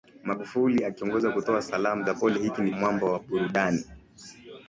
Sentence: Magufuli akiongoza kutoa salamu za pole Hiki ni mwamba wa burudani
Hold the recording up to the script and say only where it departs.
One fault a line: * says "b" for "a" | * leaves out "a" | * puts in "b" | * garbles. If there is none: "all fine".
all fine